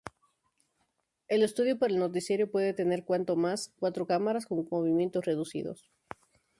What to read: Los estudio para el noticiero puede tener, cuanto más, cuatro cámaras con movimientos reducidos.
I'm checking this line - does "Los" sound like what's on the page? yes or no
no